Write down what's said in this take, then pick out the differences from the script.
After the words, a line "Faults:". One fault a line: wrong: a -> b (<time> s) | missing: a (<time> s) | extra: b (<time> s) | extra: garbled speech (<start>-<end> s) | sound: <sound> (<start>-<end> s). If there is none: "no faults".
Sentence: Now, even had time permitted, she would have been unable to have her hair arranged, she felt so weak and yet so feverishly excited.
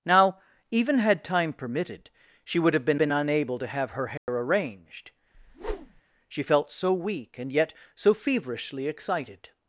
Now, even had time permitted, she would have been been unable to have her hair arranged, she felt so weak and yet so feverishly excited.
Faults:
extra: been (3.0 s)
sound: dropout (4.2-4.3 s)
sound: whoosh (5.3-6.0 s)